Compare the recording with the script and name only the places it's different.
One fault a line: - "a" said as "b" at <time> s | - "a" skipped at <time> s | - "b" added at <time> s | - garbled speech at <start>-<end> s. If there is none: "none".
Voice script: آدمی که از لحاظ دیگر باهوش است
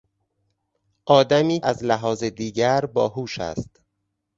- "که" skipped at 1.6 s